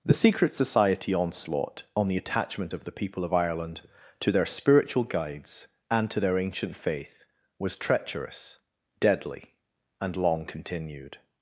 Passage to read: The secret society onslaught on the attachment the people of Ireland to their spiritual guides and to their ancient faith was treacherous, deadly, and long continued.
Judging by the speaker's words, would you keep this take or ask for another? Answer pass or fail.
fail